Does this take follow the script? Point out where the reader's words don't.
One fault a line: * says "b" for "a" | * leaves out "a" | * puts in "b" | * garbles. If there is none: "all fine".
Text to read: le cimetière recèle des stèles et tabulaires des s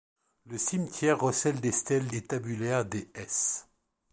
all fine